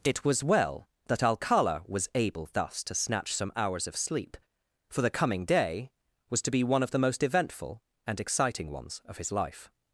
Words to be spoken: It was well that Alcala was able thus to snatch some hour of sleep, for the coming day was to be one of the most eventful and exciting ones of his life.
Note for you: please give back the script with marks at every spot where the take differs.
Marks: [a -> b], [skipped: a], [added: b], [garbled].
It was well that Alcala was able thus to snatch some [hour -> hours] of sleep, for the coming day was to be one of the most eventful and exciting ones of his life.